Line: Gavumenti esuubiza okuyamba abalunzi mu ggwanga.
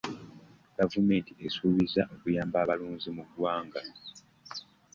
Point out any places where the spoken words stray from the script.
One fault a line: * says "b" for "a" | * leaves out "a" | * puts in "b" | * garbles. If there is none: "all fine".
all fine